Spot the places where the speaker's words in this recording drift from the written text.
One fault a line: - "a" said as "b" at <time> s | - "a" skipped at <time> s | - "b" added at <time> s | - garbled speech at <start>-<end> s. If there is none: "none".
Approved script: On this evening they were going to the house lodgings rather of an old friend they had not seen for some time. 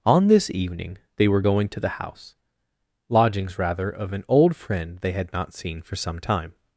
none